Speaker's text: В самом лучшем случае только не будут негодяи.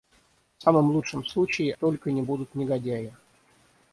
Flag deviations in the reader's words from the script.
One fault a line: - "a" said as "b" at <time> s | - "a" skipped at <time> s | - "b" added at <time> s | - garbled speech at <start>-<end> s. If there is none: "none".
none